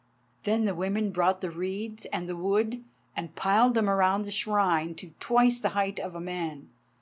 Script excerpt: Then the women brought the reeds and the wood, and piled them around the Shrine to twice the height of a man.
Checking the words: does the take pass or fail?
pass